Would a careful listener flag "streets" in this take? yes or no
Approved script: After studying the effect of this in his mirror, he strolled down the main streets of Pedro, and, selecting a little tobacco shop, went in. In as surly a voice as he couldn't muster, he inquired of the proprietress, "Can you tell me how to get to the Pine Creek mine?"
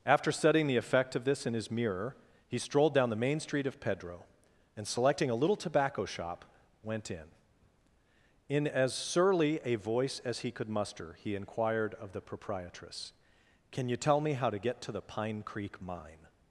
yes